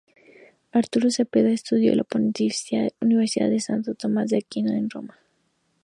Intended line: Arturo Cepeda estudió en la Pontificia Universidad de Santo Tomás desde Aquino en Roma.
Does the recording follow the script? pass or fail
fail